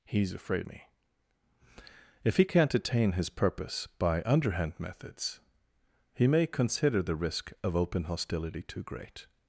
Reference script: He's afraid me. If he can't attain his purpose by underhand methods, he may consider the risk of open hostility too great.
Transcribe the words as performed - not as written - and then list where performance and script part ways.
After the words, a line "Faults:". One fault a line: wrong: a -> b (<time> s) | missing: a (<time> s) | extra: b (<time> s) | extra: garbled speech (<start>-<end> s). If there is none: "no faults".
He's afraid me. If he can't attain his purpose by underhand methods, he may consider the risk of open hostility too great.
Faults:
no faults